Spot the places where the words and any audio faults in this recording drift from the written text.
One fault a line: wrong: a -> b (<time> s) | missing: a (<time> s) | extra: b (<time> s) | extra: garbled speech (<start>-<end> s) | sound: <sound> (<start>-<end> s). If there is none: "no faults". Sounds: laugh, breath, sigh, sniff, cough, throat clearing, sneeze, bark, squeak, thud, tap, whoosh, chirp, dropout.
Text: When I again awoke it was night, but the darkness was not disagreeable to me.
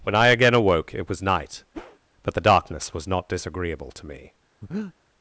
sound: whoosh (1.7-2.0 s)
sound: breath (4.6-4.9 s)